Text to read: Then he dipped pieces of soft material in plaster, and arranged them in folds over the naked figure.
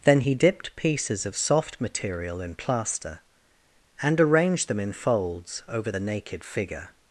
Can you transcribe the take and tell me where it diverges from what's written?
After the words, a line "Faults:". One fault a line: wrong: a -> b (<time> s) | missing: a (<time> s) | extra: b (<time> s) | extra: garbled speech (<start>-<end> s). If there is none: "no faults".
Then he dipped pieces of soft material in plaster, and arranged them in folds over the naked figure.
Faults:
no faults